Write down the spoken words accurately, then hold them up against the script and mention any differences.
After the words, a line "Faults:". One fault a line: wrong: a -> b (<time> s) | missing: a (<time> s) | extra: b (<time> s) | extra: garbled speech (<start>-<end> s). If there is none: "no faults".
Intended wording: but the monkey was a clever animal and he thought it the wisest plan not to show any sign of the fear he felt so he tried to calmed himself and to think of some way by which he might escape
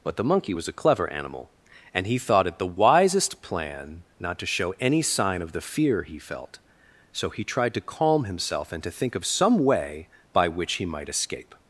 but the monkey was a clever animal and he thought it the wisest plan not to show any sign of the fear he felt so he tried to calm himself and to think of some way by which he might escape
Faults:
wrong: calmed -> calm (7.8 s)